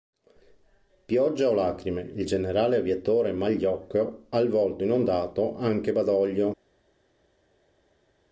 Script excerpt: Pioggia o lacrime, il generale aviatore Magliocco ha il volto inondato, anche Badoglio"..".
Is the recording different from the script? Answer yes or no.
no